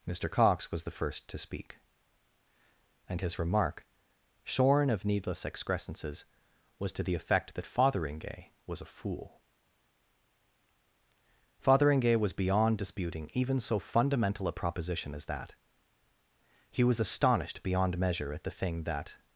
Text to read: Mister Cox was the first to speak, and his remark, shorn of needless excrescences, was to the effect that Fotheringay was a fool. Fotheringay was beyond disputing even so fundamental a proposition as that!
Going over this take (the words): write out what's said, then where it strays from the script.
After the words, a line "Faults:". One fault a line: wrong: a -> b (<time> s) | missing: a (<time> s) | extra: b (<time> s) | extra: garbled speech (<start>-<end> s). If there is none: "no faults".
Mister Cox was the first to speak, and his remark, shorn of needless excrescences, was to the effect that Fotheringay was a fool. Fotheringay was beyond disputing even so fundamental a proposition as that! He was astonished beyond measure at the thing that
Faults:
extra: He was astonished beyond measure at the thing that (16.7 s)